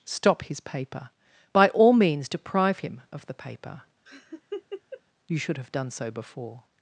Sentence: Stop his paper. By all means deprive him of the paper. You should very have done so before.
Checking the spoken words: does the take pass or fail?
fail